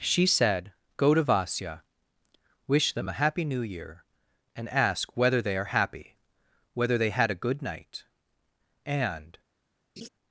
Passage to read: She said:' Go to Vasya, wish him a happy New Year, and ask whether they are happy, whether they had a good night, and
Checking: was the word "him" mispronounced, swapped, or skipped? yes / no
yes